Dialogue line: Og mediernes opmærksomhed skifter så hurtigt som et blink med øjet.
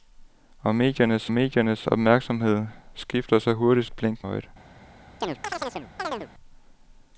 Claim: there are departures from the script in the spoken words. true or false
true